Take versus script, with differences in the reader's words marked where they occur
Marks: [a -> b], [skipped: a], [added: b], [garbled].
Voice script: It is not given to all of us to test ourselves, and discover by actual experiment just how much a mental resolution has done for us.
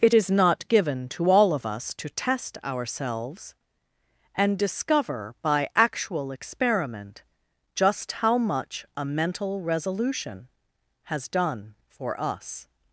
It is not given to all of us to test ourselves, and discover by actual experiment just how much a mental resolution has done for us.